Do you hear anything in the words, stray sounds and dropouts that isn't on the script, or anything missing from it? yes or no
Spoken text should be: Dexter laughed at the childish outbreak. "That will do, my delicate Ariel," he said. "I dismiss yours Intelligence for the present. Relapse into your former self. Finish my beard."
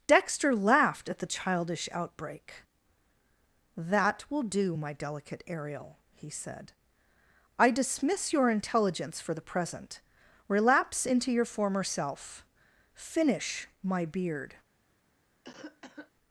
yes